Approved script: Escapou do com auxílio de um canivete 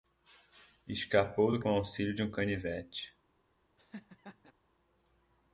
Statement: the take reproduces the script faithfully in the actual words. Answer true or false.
true